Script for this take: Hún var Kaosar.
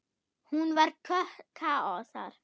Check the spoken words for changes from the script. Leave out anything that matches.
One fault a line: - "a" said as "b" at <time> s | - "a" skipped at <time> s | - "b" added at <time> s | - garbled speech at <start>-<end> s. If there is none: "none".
none